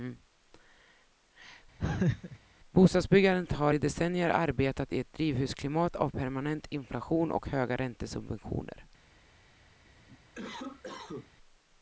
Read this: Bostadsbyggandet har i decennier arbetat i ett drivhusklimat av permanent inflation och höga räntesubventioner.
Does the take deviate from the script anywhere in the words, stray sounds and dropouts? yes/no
yes